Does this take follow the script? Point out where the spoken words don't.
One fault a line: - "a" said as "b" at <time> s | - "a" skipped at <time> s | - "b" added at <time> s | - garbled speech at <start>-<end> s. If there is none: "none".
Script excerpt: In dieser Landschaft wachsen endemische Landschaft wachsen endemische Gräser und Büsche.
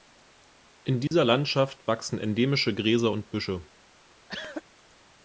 - "Landschaft wachsen endemische" skipped at 2.7 s